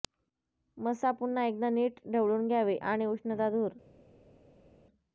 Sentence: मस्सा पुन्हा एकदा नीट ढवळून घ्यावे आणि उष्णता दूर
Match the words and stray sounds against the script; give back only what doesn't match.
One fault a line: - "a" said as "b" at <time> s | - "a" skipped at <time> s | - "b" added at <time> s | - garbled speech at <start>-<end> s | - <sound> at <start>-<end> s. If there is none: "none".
none